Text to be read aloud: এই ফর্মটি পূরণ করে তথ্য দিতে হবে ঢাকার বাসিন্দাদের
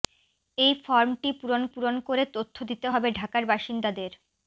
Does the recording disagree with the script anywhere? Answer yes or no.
yes